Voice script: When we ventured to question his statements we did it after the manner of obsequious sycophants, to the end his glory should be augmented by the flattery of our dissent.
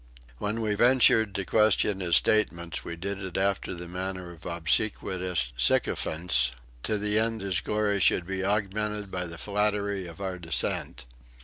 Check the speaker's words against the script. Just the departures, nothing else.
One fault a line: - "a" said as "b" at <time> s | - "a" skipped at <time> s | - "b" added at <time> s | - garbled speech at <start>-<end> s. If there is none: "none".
none